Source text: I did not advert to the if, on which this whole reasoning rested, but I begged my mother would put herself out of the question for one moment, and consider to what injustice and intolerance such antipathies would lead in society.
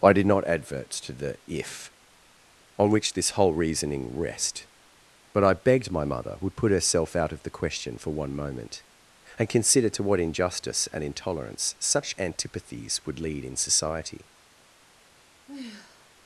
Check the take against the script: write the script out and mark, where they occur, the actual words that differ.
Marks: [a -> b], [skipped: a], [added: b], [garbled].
I did not advert to the if, on which this whole reasoning [rested, -> rest] but I begged my mother would put herself out of the question for one moment, and consider to what injustice and intolerance such antipathies would lead in society.